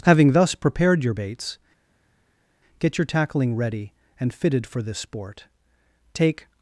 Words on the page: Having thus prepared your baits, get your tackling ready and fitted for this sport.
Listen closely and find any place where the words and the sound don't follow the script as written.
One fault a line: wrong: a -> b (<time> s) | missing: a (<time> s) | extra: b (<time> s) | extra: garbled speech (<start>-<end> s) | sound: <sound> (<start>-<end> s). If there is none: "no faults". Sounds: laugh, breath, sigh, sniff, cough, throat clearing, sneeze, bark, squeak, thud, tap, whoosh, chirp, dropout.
extra: Take (6.1 s)